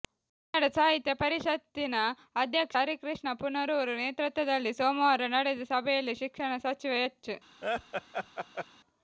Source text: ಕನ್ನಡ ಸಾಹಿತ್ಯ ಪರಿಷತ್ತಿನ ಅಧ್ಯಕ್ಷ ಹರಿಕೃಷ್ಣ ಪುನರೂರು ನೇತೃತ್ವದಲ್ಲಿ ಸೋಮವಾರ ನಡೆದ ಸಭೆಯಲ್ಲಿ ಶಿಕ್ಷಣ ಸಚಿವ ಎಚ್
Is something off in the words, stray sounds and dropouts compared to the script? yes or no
yes